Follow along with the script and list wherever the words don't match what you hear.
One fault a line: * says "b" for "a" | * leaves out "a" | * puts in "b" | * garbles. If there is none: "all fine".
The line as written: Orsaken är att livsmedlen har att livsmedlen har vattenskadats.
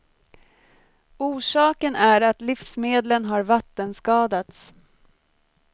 * leaves out "att livsmedlen har"